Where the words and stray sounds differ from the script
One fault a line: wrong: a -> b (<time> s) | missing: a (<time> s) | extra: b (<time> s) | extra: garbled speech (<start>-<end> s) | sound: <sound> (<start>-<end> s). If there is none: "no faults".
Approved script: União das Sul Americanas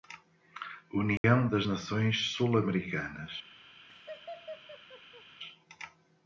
sound: dropout (1.2-1.2 s)
extra: Nações (1.6 s)
sound: laugh (3.9-5.2 s)